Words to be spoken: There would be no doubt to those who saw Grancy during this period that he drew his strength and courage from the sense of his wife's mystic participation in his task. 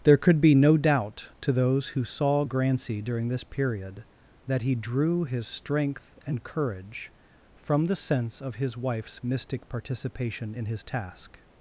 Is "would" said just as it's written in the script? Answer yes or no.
no